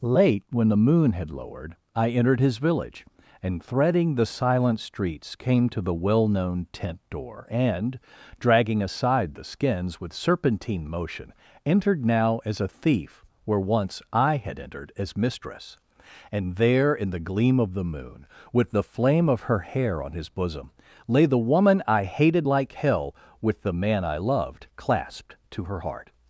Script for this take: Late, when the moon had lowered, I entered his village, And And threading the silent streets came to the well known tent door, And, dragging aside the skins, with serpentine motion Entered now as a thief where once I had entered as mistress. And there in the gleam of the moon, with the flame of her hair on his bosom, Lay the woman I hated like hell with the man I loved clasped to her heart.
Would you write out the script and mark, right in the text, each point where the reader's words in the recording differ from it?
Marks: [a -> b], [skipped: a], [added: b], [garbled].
Late, when the moon had lowered, I entered his village, And [skipped: And] threading the silent streets came to the well known tent door, And, dragging aside the skins, with serpentine motion Entered now as a thief where once I had entered as mistress. And there in the gleam of the moon, with the flame of her hair on his bosom, Lay the woman I hated like hell with the man I loved clasped to her heart.